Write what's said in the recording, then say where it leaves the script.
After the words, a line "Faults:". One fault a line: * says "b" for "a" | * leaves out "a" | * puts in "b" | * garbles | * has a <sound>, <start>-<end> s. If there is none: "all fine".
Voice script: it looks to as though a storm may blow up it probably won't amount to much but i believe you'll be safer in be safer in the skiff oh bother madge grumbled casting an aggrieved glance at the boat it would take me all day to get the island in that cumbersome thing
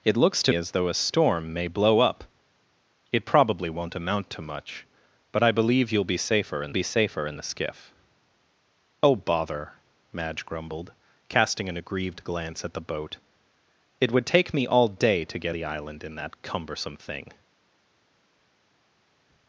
it looks to as though a storm may blow up it probably won't amount to much but i believe you'll be safer in be safer in the skiff oh bother madge grumbled casting an aggrieved glance at the boat it would take me all day to get the island in that cumbersome thing
Faults:
all fine